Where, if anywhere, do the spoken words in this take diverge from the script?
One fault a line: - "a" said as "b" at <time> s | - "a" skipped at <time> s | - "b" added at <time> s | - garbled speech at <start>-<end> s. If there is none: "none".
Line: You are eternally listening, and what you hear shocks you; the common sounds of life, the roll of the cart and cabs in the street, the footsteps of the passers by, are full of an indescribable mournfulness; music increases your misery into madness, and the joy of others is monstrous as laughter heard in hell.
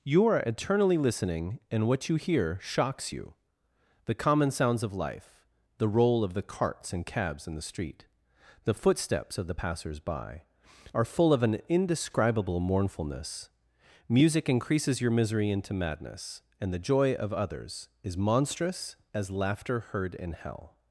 - "cart" said as "carts" at 6.4 s